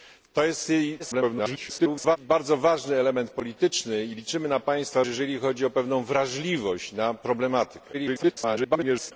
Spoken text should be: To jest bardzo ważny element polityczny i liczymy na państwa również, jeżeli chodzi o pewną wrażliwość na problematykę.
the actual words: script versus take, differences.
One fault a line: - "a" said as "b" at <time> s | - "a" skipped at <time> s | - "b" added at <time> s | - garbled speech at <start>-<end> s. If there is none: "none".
- garbled speech at 1.0-2.2 s
- "również" skipped at 5.0 s
- garbled speech at 7.9-9.1 s